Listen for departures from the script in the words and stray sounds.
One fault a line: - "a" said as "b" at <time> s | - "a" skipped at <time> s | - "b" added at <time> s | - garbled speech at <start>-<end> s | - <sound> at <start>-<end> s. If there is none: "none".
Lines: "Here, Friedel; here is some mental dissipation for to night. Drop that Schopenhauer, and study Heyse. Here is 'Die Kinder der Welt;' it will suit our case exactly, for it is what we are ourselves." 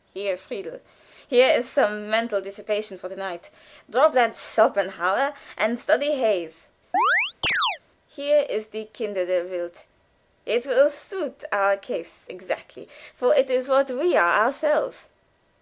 - chirp at 6.9-7.8 s